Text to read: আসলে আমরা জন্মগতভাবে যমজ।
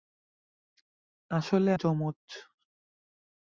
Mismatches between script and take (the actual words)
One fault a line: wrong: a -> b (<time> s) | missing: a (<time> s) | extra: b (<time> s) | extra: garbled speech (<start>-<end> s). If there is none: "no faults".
missing: আমরা জন্মগতভাবে (1.7 s)